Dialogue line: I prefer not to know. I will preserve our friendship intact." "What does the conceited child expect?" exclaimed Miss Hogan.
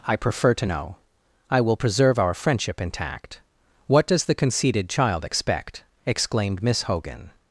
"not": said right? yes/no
no